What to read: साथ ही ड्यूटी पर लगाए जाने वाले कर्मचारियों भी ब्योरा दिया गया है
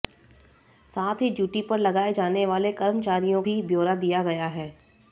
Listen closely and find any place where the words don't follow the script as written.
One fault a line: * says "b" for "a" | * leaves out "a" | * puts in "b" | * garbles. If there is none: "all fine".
all fine